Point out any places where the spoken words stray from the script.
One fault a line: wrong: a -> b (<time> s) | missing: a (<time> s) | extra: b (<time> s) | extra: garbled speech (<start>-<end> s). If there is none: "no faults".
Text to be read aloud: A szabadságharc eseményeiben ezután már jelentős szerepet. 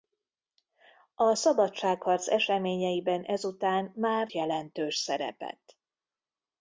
no faults